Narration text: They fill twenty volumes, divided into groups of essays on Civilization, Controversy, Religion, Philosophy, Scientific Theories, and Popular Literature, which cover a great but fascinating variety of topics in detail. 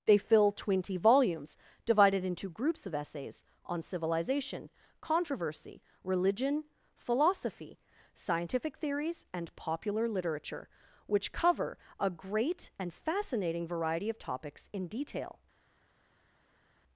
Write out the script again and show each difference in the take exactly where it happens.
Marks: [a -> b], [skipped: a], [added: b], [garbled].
They fill twenty volumes, divided into groups of essays on Civilization, Controversy, Religion, Philosophy, Scientific Theories, and Popular Literature, which cover a great [but -> and] fascinating variety of topics in detail.